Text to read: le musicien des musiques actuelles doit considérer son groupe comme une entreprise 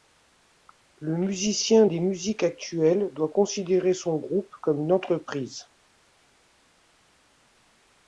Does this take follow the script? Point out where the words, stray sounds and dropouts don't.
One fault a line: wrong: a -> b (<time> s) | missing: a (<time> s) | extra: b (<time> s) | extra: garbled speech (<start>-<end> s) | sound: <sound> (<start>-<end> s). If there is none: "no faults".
no faults